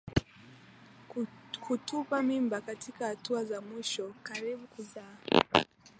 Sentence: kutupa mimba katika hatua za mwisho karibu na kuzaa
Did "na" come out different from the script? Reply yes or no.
yes